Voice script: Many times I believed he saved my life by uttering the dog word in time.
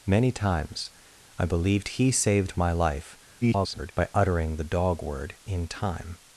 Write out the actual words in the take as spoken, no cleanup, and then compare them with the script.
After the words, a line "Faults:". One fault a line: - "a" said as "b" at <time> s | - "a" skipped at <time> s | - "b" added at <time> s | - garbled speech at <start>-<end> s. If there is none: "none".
Many times I believed he saved my life [garbled] by uttering the dog word in time.
Faults:
- garbled speech at 3.4-3.9 s